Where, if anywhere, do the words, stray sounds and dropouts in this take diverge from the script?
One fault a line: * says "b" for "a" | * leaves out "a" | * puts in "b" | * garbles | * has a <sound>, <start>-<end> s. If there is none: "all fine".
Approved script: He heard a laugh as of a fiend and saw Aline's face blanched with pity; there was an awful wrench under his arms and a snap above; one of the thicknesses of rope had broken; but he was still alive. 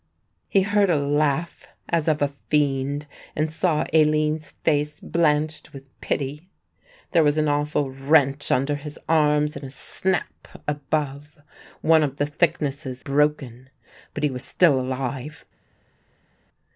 * leaves out "of rope had"